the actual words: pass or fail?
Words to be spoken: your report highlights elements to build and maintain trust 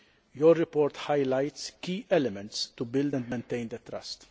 fail